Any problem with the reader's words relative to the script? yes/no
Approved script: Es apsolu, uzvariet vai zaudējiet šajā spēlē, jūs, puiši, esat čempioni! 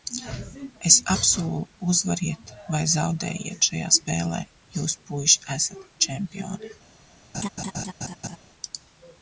no